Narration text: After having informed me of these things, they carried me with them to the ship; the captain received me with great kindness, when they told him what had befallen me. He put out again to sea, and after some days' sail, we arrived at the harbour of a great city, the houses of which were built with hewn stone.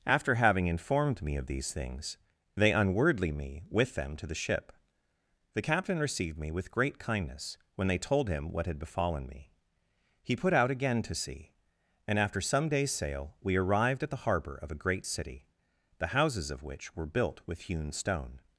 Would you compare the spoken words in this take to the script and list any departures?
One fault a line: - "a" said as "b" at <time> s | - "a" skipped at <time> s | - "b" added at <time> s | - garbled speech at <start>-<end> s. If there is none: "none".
- "carried" said as "unwordly" at 2.7 s